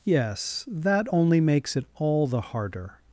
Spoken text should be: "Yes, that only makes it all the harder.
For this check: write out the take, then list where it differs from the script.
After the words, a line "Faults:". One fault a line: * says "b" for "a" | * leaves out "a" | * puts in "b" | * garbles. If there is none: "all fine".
"Yes, that only makes it all the harder.
Faults:
all fine